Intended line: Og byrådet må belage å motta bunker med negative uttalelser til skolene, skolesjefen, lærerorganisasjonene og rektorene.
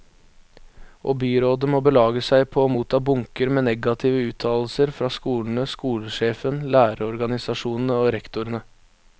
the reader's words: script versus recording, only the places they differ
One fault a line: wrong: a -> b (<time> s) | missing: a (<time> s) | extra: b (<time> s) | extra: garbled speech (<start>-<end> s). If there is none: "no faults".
extra: seg på (2.3 s)
wrong: til -> fra (5.0 s)